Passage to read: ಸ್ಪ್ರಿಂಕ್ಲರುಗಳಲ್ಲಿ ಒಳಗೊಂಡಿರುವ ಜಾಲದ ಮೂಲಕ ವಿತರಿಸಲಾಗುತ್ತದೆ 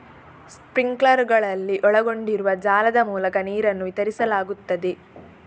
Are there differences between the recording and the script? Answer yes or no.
yes